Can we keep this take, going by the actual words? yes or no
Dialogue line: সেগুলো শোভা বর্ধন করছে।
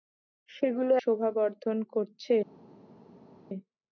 yes